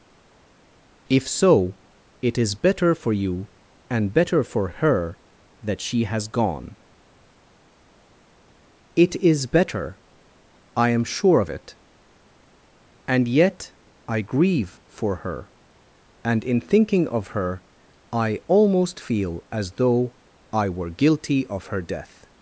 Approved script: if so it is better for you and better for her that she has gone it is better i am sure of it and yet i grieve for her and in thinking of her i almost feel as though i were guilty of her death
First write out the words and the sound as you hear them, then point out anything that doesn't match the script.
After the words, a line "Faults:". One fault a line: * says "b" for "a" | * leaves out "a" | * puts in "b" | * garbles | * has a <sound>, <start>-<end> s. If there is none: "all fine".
if so it is better for you and better for her that she has gone it is better i am sure of it and yet i grieve for her and in thinking of her i almost feel as though i were guilty of her death
Faults:
all fine